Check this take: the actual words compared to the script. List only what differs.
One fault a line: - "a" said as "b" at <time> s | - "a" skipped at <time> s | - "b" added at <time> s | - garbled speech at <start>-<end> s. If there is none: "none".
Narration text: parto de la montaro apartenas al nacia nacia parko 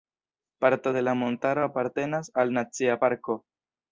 - "nacia" skipped at 3.0 s